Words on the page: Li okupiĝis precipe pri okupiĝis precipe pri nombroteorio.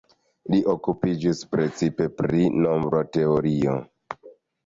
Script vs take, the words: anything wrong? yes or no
yes